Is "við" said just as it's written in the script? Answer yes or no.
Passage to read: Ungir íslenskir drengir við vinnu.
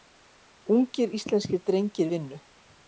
no